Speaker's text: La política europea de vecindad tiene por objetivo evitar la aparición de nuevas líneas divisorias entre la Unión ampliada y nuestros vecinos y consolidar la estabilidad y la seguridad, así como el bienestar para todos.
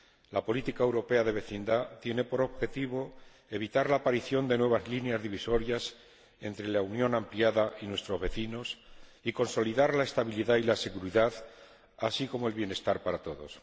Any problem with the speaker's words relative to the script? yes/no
no